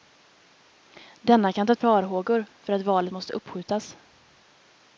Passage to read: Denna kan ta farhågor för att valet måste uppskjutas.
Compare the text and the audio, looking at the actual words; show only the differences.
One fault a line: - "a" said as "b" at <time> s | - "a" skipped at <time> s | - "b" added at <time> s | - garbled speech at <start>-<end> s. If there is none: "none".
none